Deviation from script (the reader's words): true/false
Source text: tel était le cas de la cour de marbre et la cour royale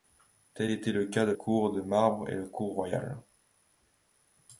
true